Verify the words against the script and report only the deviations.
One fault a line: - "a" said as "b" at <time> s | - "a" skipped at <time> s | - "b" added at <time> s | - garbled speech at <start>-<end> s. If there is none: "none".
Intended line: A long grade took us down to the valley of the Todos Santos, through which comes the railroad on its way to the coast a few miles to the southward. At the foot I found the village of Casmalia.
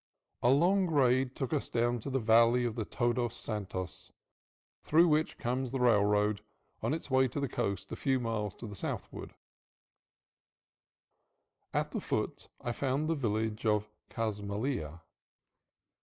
none